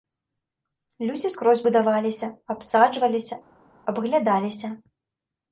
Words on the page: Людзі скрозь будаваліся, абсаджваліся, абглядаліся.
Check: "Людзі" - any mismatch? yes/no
no